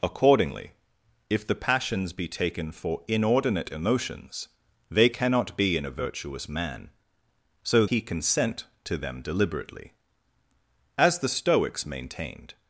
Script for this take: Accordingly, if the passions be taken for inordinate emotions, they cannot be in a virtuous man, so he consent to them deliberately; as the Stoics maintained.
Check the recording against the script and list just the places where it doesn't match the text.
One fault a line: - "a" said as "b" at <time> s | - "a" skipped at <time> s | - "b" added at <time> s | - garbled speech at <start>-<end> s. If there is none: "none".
none